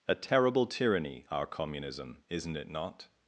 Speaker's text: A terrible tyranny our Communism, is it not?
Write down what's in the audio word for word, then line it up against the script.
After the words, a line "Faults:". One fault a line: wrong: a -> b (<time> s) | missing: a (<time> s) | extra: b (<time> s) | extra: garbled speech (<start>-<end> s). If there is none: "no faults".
A terrible tyranny our Communism, isn't it not?
Faults:
wrong: is -> isn't (2.3 s)